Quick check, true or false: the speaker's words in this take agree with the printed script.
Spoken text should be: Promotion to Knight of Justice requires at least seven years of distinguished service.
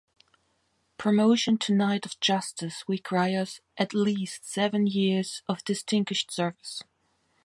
true